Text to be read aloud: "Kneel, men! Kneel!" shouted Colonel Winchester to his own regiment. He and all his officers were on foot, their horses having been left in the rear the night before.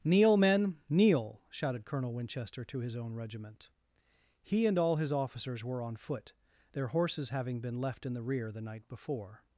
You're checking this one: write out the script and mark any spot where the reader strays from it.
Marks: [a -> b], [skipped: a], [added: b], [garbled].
"Kneel, men! Kneel!" shouted Colonel Winchester to his own regiment. He and all his officers were on foot, their horses having been left in the rear the night before.